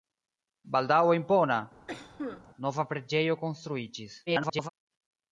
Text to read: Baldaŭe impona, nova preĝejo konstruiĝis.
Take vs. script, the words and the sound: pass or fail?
fail